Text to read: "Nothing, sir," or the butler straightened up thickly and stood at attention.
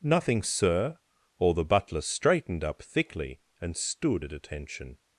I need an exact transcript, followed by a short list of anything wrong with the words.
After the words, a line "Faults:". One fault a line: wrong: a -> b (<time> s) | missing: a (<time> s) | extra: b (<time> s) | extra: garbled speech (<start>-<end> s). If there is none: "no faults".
"Nothing, sir," or the butler straightened up thickly and stood at attention.
Faults:
no faults